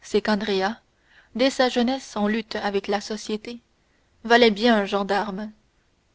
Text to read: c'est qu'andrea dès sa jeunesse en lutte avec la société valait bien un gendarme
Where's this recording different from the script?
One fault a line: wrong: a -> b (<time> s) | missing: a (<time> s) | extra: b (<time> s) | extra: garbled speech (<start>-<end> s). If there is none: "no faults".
no faults